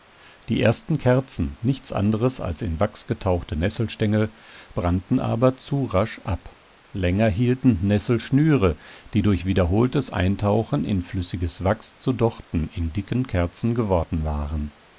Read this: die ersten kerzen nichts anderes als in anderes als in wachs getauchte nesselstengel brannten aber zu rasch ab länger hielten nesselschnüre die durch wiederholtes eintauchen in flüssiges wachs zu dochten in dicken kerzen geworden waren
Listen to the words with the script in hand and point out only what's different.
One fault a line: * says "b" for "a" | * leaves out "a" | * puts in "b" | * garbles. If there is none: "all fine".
* leaves out "anderes als in"